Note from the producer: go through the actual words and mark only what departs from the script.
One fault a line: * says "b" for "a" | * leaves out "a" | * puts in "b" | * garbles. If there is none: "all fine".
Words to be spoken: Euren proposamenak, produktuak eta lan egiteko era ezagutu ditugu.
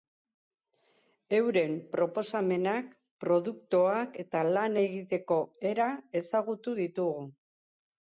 all fine